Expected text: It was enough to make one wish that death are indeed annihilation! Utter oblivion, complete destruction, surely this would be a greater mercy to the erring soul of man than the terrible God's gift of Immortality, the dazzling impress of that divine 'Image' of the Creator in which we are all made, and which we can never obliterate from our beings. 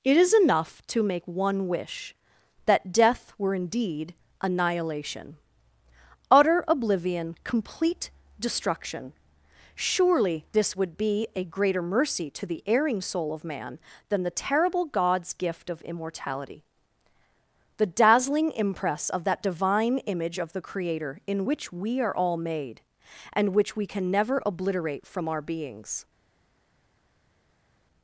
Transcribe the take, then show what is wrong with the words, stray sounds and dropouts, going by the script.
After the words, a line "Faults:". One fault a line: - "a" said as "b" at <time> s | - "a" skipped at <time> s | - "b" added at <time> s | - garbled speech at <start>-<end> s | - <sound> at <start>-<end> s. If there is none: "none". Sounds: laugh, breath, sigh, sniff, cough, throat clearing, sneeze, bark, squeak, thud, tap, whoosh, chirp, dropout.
It is enough to make one wish that death were indeed annihilation! Utter oblivion, complete destruction, surely this would be a greater mercy to the erring soul of man than the terrible God's gift of Immortality, the dazzling impress of that divine 'Image' of the Creator in which we are all made, and which we can never obliterate from our beings.
Faults:
- "was" said as "is" at 0.2 s
- "are" said as "were" at 3.4 s